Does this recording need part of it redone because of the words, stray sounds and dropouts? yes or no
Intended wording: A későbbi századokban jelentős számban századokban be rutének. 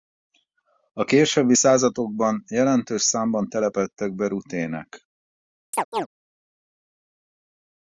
yes